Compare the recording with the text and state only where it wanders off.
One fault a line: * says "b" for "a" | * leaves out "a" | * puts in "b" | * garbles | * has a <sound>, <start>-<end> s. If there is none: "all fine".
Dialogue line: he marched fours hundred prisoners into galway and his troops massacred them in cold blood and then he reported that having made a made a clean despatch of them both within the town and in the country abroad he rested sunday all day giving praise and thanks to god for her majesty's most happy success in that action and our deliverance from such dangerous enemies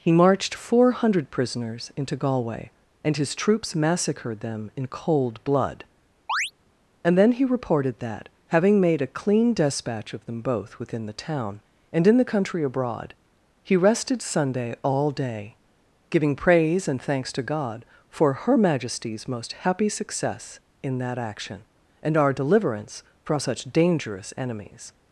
* says "four" for "fours"
* has a chirp, 6.3-6.5 s
* leaves out "made a"